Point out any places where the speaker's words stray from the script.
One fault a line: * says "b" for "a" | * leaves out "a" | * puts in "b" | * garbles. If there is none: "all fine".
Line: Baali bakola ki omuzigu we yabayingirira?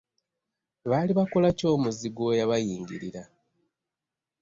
all fine